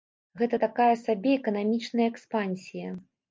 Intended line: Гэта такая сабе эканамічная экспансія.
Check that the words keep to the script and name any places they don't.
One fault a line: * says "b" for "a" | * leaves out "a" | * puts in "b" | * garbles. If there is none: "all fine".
all fine